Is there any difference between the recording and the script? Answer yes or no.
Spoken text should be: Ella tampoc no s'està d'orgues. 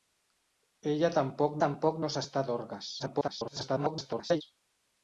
yes